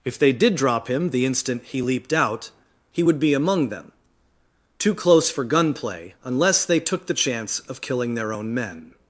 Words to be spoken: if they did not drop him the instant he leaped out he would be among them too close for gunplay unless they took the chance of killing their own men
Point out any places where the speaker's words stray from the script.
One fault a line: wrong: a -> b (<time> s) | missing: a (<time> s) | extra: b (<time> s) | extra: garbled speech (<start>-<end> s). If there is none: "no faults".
missing: not (0.6 s)